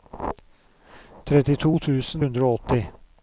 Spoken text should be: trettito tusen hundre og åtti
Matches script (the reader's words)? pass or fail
pass